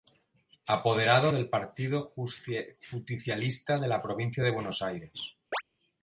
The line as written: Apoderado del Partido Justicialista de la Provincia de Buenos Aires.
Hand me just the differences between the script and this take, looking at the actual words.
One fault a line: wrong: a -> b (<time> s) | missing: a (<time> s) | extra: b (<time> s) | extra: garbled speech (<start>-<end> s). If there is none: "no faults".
no faults